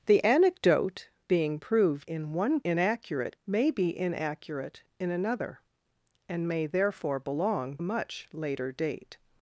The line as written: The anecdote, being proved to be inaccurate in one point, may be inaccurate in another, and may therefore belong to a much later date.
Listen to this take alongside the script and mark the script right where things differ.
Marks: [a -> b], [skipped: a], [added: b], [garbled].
The anecdote, being proved [skipped: to be inaccurate] in one [point, -> inaccurate] may be inaccurate in another, and may therefore belong [skipped: to] a much later date.